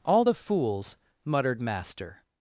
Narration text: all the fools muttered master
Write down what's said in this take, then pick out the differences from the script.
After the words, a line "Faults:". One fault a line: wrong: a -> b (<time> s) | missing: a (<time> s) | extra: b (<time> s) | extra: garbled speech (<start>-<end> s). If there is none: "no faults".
all the fools muttered master
Faults:
no faults